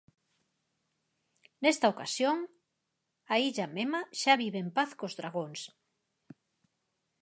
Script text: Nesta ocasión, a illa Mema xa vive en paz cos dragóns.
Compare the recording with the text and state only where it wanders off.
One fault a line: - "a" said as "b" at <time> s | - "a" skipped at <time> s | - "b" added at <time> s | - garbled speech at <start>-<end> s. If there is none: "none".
none